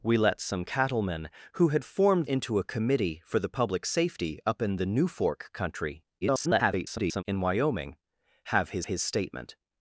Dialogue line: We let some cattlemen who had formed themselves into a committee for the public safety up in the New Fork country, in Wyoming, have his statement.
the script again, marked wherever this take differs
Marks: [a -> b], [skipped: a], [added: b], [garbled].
We let some cattlemen who had formed [skipped: themselves] into a committee for the public safety up in the New Fork country, [garbled] in Wyoming, have his [added: his] statement.